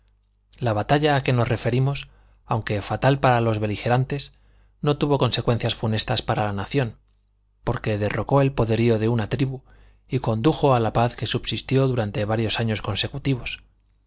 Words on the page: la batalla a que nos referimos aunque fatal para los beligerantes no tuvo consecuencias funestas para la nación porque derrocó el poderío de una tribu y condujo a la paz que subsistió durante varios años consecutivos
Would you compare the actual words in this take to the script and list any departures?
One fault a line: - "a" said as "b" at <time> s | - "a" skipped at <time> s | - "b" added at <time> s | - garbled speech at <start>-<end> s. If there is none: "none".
none